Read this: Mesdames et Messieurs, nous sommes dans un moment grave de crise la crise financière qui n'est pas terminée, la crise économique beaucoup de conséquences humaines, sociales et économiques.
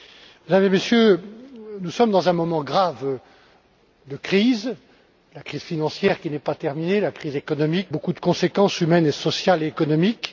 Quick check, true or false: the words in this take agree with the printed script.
true